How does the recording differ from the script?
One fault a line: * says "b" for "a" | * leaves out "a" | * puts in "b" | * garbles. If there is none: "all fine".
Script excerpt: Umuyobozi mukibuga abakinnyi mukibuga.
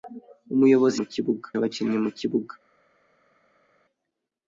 all fine